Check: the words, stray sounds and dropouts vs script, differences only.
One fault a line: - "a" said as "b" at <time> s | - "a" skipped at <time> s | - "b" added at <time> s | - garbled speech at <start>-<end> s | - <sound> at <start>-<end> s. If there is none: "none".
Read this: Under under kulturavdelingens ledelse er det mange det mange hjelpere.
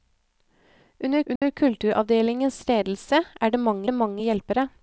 - dropout at 1.4-1.4 s